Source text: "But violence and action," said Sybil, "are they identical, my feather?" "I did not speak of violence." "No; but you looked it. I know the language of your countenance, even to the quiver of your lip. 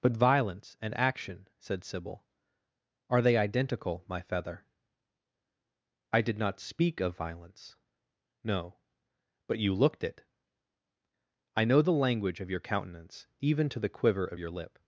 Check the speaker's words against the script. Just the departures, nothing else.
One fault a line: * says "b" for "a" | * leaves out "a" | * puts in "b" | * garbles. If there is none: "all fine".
all fine